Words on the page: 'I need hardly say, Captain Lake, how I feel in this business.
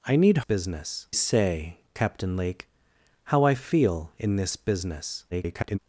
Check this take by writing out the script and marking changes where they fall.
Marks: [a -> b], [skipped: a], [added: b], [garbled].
'I need [hardly -> business] say, Captain Lake, how I feel in this business. [garbled]